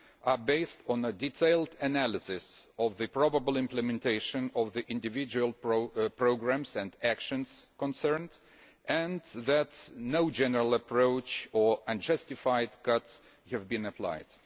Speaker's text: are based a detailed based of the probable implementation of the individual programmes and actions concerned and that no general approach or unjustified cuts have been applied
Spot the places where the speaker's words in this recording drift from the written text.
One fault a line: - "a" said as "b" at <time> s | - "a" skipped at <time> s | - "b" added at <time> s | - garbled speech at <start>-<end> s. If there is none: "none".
- "on" added at 0.9 s
- "based" said as "analysis" at 1.8 s